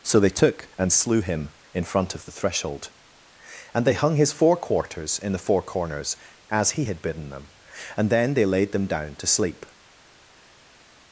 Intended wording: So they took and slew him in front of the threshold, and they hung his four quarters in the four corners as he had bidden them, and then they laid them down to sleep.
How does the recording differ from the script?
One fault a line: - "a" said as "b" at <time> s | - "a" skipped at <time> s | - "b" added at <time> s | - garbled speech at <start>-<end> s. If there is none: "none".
none